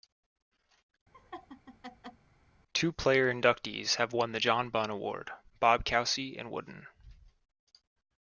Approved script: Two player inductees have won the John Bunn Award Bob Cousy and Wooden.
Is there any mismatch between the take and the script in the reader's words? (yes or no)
no